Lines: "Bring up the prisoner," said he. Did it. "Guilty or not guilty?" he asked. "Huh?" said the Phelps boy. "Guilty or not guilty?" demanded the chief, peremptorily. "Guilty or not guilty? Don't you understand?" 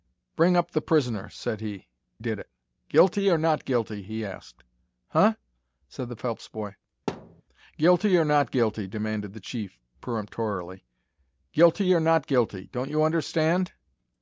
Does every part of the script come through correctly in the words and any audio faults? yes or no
no